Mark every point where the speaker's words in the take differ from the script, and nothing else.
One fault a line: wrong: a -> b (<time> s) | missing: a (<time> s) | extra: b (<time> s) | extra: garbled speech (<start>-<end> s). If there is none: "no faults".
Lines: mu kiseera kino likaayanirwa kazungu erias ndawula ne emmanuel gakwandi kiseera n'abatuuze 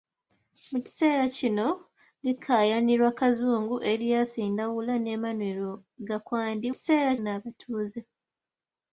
no faults